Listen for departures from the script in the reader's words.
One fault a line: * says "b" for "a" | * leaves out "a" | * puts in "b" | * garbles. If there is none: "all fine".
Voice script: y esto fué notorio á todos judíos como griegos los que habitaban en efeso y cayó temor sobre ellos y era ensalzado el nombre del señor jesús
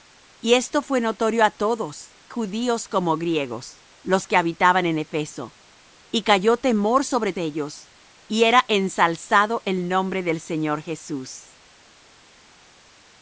all fine